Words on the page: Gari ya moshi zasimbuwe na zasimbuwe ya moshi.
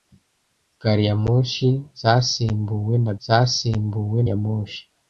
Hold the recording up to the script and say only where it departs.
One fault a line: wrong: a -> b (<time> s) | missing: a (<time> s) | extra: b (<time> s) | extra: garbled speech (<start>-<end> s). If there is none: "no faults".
no faults